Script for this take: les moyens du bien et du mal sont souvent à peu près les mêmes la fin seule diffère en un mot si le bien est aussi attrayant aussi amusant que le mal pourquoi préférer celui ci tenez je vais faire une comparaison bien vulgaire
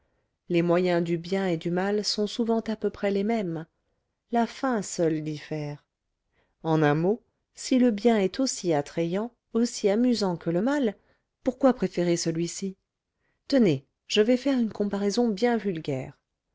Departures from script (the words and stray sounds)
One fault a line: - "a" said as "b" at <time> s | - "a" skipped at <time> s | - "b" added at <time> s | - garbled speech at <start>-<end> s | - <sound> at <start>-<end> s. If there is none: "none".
none